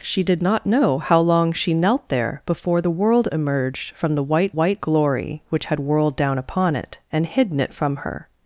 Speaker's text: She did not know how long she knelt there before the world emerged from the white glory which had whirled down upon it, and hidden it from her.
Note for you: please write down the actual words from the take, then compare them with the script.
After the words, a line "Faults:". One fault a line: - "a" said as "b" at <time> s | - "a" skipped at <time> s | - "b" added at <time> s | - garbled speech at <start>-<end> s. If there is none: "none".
She did not know how long she knelt there before the world emerged from the white white glory which had whirled down upon it, and hidden it from her.
Faults:
- "white" added at 4.5 s